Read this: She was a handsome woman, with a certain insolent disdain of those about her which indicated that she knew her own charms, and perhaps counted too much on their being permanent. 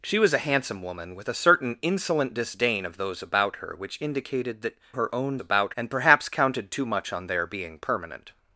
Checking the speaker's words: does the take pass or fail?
fail